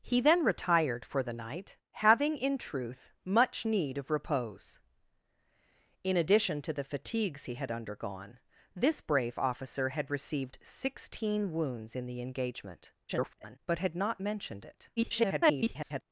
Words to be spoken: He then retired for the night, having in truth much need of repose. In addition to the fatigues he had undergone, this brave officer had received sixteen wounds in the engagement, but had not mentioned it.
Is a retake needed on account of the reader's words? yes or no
yes